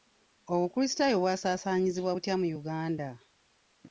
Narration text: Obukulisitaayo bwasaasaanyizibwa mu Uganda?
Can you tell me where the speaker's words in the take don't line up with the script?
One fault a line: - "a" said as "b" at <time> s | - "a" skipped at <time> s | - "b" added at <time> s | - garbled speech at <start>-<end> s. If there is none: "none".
- "butya" added at 2.1 s